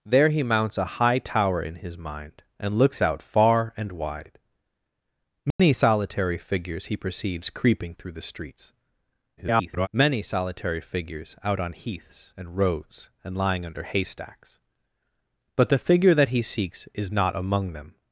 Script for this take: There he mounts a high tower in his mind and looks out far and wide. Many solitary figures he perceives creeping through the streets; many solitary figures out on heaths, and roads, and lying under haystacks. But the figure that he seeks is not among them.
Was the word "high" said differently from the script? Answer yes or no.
no